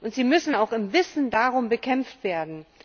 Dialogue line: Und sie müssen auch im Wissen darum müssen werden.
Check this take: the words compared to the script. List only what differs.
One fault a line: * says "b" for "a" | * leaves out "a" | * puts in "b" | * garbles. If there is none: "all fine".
* says "bekämpft" for "müssen"